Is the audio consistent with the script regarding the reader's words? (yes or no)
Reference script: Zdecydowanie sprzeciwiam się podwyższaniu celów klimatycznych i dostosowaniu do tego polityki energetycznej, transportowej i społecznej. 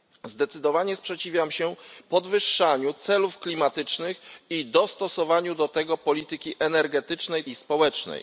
no